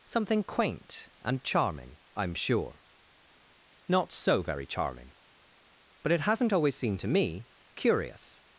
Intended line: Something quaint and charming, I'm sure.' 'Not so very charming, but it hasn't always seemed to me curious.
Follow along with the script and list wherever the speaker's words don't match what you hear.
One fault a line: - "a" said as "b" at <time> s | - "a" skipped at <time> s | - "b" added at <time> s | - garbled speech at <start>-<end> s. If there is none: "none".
none